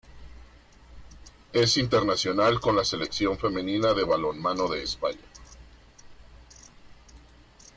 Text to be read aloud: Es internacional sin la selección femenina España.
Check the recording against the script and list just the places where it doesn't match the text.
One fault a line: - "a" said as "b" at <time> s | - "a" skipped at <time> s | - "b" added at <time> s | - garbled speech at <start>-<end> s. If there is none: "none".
- "sin" said as "con" at 2.6 s
- "de balonmano de" added at 3.9 s